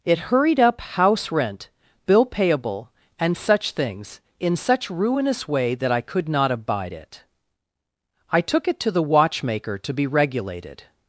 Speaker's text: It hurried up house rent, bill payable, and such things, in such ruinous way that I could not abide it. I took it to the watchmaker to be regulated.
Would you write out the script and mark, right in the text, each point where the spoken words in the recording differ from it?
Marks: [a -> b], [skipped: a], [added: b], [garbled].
It hurried up house rent, bill payable, and such things, in such ruinous way that I could not abide it. I took it to the watchmaker to be regulated.